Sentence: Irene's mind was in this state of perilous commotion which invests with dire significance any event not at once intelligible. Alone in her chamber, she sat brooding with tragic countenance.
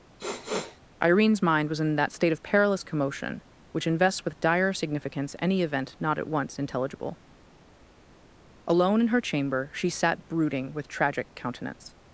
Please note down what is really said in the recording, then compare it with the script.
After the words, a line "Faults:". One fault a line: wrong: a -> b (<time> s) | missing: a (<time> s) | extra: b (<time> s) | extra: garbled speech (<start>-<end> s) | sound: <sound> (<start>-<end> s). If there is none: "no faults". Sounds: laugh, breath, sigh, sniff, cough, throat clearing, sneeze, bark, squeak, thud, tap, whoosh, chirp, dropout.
Irene's mind was in that state of perilous commotion which invests with dire significance any event not at once intelligible. Alone in her chamber, she sat brooding with tragic countenance.
Faults:
sound: sniff (0.2-0.8 s)
wrong: this -> that (2.0 s)